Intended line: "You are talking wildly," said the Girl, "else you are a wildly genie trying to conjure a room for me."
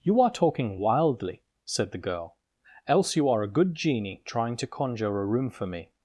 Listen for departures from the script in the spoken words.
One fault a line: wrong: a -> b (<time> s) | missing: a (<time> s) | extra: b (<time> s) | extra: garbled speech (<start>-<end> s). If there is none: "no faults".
wrong: wildly -> good (3.5 s)